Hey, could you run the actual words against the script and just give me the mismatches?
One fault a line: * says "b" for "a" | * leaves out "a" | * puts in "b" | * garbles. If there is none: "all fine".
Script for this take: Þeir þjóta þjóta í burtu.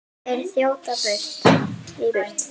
* leaves out "þjóta"